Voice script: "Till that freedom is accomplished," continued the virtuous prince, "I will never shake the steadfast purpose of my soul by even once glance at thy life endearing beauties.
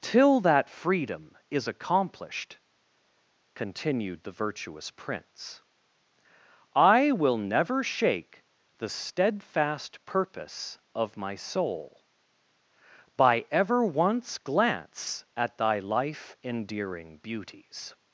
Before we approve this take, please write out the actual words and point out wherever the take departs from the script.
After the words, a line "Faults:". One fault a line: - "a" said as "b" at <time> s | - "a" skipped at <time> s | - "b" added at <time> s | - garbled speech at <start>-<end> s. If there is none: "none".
"Till that freedom is accomplished," continued the virtuous prince, "I will never shake the steadfast purpose of my soul by ever once glance at thy life endearing beauties.
Faults:
- "even" said as "ever" at 13.5 s